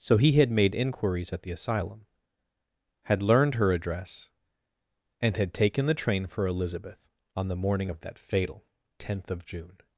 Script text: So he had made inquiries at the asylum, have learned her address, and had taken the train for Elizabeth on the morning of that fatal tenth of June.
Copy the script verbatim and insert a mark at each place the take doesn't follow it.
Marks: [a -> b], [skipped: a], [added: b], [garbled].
So he had made inquiries at the asylum, [have -> had] learned her address, and had taken the train for Elizabeth on the morning of that fatal tenth of June.